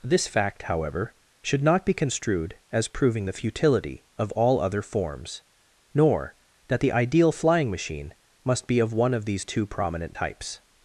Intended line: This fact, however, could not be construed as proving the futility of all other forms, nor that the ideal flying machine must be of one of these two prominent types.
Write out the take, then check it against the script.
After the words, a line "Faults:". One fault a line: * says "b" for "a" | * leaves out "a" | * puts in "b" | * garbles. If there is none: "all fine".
This fact, however, should not be construed as proving the futility of all other forms, nor that the ideal flying machine must be of one of these two prominent types.
Faults:
* says "should" for "could"